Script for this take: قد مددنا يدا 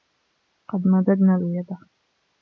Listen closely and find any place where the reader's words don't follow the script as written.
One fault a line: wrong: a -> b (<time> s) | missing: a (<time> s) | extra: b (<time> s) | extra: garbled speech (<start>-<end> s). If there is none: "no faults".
no faults